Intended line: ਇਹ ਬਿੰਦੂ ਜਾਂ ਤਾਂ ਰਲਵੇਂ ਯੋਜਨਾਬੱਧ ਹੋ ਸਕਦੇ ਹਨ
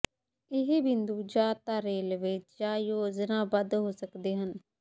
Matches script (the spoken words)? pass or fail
fail